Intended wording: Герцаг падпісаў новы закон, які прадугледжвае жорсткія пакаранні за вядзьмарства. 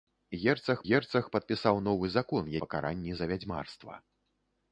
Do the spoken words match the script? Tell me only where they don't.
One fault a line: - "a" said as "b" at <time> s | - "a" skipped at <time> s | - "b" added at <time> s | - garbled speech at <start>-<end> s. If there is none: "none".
- "герцаг" added at 0.9 s
- "які прадугледжвае жорсткія" skipped at 2.5 s